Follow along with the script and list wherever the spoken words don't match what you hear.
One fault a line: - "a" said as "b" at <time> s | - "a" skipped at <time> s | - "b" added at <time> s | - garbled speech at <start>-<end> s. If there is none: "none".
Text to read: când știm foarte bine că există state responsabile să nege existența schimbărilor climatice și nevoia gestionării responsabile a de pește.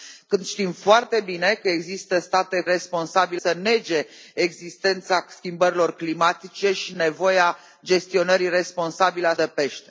none